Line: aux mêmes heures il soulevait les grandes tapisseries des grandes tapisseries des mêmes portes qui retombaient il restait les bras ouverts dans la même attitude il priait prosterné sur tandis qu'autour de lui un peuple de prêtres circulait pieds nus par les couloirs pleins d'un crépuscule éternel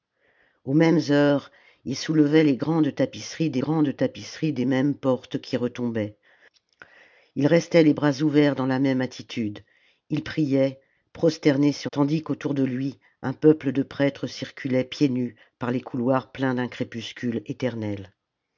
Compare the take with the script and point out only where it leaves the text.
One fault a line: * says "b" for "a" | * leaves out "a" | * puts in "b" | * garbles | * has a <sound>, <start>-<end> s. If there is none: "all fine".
all fine